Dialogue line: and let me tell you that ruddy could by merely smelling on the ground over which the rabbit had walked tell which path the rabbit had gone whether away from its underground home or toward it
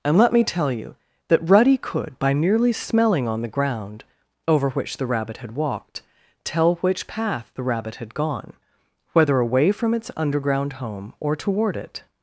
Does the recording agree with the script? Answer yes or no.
yes